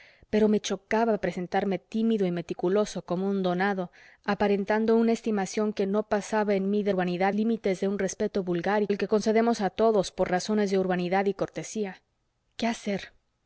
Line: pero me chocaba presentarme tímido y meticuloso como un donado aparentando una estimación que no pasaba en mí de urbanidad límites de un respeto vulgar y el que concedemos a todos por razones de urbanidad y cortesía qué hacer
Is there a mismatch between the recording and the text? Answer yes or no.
no